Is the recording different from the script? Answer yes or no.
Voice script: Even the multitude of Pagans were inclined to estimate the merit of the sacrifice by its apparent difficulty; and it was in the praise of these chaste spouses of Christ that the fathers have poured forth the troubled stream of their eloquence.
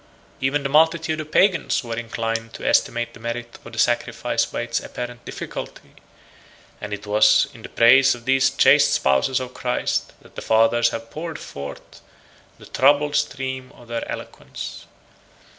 no